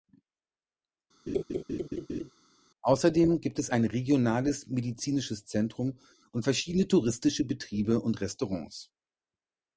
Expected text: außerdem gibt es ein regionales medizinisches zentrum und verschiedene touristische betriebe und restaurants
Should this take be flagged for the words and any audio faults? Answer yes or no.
yes